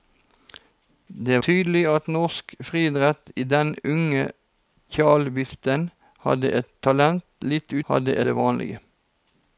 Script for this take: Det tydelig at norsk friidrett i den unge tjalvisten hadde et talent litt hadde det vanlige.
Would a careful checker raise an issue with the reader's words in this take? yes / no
no